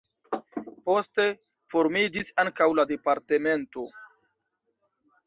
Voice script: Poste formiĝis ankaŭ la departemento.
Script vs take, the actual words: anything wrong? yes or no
no